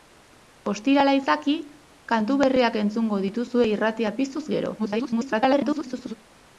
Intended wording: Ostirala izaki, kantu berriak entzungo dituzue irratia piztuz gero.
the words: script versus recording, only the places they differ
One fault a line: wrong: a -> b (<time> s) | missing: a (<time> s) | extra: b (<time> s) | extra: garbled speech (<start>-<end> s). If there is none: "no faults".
extra: garbled speech (4.8-6.1 s)